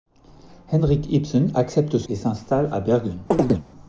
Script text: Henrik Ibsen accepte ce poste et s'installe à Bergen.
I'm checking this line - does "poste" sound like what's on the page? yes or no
no